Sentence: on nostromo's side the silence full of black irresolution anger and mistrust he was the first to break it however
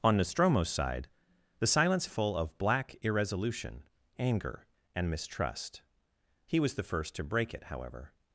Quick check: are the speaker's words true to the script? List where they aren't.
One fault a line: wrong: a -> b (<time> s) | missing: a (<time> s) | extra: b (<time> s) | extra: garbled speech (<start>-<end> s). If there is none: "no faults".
no faults